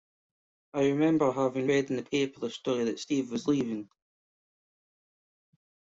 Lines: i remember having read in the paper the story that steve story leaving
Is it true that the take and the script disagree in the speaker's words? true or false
true